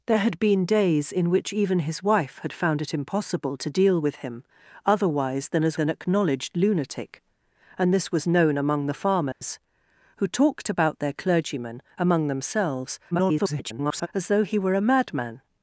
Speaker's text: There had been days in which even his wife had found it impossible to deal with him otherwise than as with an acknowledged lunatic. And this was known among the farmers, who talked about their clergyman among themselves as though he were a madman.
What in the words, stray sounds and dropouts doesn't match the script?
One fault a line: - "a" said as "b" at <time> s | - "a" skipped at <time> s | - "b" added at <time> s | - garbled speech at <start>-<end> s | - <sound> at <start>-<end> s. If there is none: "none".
- "with" skipped at 5.8 s
- dropout at 9.3-9.4 s
- garbled speech at 13.1-14.1 s